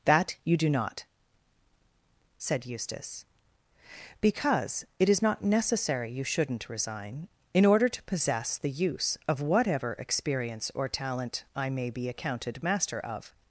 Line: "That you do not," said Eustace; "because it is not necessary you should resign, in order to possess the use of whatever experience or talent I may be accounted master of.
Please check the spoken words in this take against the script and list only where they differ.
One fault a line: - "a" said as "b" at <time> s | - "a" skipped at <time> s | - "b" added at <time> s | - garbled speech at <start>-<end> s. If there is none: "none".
- "should" said as "shouldn't" at 6.2 s